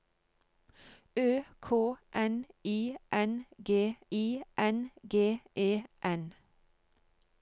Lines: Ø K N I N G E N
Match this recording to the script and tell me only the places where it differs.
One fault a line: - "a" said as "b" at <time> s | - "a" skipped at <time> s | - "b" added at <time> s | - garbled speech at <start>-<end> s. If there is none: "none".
- "I N G" added at 4.1 s